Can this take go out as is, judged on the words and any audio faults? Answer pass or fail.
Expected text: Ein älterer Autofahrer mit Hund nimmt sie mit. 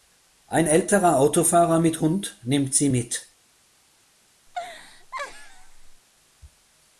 fail